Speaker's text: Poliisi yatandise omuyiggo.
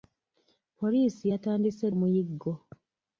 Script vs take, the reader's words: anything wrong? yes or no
no